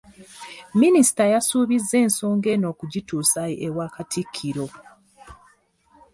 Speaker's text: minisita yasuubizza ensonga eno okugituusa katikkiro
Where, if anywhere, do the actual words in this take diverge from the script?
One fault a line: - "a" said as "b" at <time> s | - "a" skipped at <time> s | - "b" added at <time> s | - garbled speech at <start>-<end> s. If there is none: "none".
- "ewa" added at 3.7 s